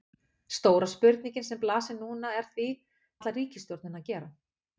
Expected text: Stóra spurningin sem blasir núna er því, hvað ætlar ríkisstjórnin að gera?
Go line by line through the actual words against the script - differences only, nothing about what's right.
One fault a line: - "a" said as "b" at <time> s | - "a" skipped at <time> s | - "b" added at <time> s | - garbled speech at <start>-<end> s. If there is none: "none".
- "hvað" skipped at 2.7 s